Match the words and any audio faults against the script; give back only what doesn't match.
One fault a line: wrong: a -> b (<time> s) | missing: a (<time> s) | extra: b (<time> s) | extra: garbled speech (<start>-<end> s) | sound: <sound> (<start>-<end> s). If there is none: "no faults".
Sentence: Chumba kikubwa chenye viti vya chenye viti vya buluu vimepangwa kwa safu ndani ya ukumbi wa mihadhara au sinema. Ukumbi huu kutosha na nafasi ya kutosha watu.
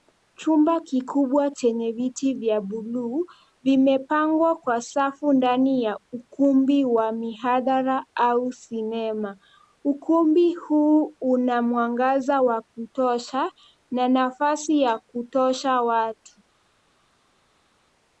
missing: chenye viti vya (2.6 s)
extra: una mwangaza wa (11.2 s)